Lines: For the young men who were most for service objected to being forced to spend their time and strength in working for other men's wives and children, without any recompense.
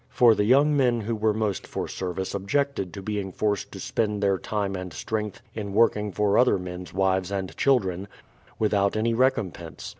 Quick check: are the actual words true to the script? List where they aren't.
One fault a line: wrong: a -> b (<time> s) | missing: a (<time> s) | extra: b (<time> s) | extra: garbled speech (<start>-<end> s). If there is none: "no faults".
no faults